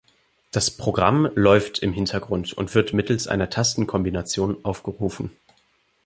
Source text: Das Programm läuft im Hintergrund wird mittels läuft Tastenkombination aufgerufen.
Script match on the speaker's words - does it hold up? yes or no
no